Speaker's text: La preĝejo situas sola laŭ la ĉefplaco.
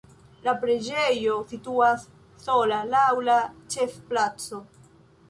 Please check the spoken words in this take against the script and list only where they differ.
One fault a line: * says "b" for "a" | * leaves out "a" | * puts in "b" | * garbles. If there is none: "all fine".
all fine